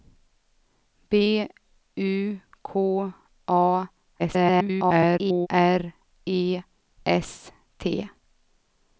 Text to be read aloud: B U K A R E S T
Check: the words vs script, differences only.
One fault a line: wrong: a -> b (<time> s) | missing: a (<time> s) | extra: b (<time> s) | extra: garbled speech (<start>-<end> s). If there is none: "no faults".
extra: garbled speech (4.2-5.5 s)